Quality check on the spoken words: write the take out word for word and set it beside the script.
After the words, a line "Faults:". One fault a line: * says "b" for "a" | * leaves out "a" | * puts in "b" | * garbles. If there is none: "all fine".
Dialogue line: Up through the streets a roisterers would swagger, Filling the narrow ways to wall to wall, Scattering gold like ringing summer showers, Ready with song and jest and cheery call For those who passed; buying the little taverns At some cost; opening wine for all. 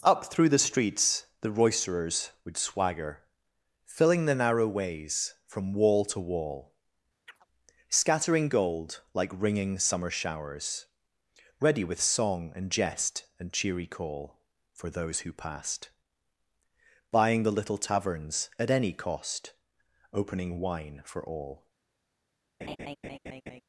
Up through the streets the roisterers would swagger, Filling the narrow ways from wall to wall, Scattering gold like ringing summer showers, Ready with song and jest and cheery call For those who passed; buying the little taverns At any cost; opening wine for all.
Faults:
* says "the" for "a"
* says "from" for "to"
* says "any" for "some"